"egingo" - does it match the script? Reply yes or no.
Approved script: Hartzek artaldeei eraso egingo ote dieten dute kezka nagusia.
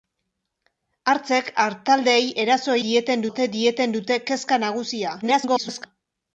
no